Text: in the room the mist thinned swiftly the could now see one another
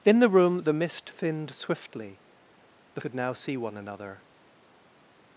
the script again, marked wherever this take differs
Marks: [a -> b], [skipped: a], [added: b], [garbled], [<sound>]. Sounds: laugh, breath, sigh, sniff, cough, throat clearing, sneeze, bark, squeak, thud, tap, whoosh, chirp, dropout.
in the room the mist thinned swiftly the could now see one another